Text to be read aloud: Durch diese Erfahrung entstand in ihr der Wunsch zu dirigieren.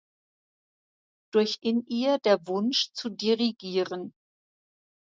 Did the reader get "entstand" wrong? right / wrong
wrong